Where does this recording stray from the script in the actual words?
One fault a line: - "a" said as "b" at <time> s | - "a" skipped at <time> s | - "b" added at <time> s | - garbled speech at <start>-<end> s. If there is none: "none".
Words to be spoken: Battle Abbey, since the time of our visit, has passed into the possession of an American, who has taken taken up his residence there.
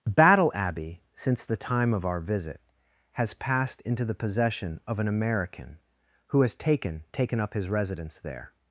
none